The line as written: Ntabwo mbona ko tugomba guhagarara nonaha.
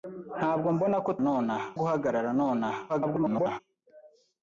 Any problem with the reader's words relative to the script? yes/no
yes